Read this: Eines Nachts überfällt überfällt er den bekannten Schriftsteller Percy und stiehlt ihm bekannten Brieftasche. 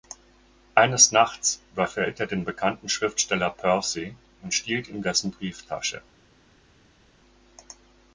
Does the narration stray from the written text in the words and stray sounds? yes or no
yes